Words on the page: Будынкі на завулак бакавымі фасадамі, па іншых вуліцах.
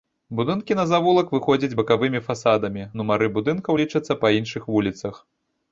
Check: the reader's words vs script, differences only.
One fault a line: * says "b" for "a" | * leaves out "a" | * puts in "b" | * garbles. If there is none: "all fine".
* puts in "выходзяць"
* puts in "нумары будынкаў лічацца"